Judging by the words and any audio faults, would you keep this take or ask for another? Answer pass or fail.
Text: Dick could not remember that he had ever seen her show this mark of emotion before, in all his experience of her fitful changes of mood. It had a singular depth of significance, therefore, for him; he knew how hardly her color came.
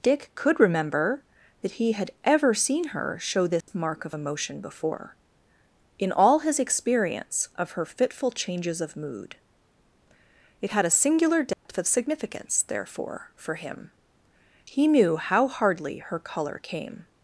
fail